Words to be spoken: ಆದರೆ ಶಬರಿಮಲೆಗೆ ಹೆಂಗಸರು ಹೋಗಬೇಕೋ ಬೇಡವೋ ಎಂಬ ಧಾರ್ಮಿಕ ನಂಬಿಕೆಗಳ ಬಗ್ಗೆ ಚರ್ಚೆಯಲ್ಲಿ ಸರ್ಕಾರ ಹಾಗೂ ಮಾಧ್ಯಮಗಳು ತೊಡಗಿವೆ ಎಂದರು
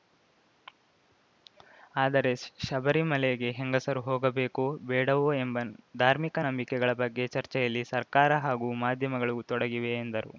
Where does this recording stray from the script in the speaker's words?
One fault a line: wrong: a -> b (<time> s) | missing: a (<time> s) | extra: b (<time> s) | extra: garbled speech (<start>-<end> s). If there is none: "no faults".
no faults